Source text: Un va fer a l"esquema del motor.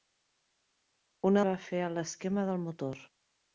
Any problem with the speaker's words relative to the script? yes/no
no